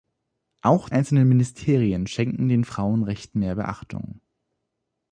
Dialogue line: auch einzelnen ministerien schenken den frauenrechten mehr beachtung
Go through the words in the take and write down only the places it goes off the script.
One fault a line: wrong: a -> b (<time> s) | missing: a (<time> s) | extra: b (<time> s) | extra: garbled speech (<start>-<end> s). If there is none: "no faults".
no faults